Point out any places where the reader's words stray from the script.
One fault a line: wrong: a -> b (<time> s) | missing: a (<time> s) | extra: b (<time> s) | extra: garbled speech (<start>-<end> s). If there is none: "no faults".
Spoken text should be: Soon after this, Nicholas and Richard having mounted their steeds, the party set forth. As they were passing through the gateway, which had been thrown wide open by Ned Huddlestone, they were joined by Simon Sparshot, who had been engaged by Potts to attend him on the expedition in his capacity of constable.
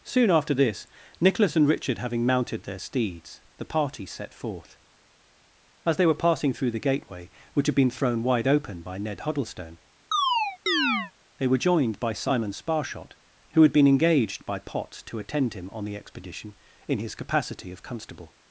no faults